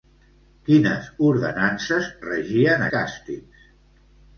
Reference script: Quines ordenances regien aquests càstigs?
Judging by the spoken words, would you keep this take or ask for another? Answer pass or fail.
fail